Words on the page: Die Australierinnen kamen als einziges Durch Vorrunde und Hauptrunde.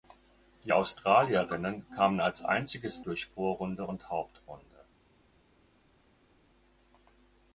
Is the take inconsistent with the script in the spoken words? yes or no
no